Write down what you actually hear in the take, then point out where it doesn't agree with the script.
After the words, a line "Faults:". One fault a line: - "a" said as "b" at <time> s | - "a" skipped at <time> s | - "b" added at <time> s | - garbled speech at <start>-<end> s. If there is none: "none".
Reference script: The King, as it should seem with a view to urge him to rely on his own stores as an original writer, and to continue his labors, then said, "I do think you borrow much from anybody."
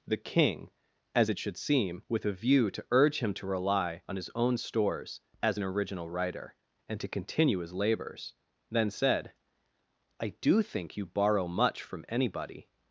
The King, as it should seem with a view to urge him to rely on his own stores as an original writer, and to continue his labors, then said, "I do think you borrow much from anybody."
Faults:
none